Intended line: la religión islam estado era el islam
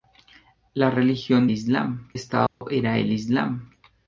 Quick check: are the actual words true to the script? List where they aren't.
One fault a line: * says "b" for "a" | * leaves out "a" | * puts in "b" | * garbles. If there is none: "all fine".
all fine